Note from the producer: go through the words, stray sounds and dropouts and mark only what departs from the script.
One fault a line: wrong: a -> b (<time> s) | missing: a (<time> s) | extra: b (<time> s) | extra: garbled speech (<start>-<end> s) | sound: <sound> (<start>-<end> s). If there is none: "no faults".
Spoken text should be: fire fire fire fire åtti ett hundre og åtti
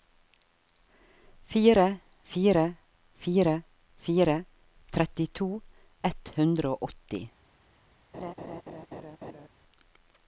wrong: åtti -> trettito (4.9 s)
sound: laugh (8.1-9.5 s)